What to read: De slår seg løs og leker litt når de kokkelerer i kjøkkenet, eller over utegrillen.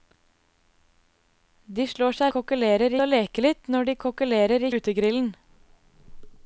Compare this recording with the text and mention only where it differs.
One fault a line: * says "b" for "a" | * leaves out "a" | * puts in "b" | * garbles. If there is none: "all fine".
* says "kokkelerer" for "løs"
* leaves out "kjøkkenet eller over"